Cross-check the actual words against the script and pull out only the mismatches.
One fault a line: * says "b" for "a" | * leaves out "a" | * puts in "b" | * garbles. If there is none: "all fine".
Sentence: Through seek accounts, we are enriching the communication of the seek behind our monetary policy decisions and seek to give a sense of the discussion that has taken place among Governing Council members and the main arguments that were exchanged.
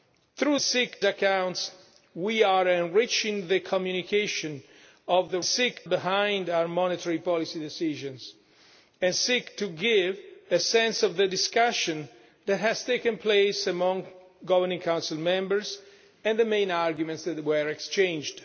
all fine